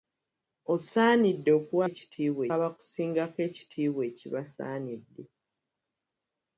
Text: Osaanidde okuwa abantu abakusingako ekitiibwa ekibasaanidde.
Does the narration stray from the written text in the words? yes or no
yes